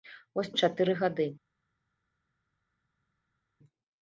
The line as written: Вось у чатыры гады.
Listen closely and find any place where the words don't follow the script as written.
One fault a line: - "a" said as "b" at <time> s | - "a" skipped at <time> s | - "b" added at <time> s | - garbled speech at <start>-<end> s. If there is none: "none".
none